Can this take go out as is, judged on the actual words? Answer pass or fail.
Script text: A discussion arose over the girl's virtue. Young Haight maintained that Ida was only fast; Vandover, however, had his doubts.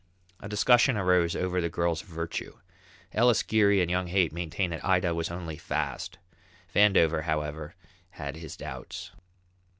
fail